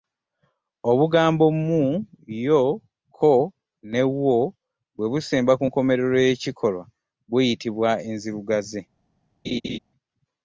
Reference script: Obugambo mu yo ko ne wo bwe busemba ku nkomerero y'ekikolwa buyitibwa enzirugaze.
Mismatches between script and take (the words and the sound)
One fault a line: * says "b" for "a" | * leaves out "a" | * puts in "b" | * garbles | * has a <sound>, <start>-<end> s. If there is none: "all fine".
* has a laugh, 9.4-9.8 s